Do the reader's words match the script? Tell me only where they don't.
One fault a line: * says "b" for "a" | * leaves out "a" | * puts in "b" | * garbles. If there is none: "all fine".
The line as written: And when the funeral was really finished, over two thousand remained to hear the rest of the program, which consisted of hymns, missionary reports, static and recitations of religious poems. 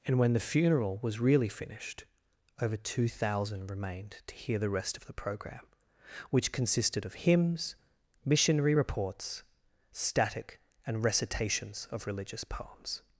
all fine